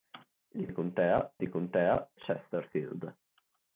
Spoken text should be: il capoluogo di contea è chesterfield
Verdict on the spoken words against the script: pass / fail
fail